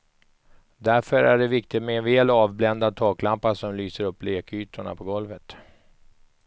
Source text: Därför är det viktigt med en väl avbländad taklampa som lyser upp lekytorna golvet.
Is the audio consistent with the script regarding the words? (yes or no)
no